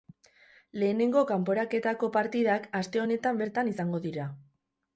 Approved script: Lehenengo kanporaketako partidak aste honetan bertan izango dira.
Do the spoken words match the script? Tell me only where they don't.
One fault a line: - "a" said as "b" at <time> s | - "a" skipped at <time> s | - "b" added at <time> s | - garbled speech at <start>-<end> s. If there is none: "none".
none